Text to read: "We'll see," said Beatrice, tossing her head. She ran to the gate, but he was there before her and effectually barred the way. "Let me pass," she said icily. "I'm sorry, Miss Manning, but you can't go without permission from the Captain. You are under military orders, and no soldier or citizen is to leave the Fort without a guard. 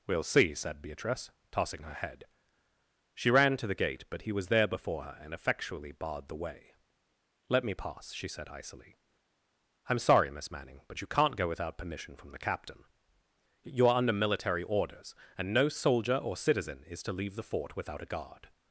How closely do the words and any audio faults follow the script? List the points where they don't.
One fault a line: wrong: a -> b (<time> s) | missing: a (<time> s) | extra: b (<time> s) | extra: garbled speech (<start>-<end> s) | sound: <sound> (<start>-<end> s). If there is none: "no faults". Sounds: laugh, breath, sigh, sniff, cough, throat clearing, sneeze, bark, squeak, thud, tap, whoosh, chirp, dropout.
no faults